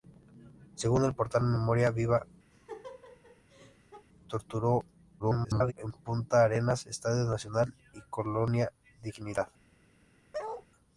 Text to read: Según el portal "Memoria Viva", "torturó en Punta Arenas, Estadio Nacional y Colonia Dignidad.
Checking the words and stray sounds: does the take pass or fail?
fail